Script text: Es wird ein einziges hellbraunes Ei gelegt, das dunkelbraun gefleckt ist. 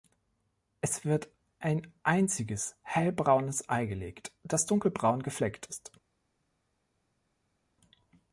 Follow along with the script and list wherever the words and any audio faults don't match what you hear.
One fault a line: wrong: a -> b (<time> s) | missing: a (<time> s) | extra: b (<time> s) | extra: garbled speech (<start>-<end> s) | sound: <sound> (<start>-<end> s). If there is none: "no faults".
no faults